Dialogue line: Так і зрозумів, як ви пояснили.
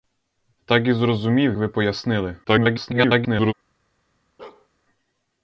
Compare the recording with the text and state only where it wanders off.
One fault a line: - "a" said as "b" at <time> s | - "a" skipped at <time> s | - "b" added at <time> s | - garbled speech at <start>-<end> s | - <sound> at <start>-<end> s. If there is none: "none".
- "як" skipped at 1.6 s
- garbled speech at 2.4-3.5 s
- bark at 4.4-4.7 s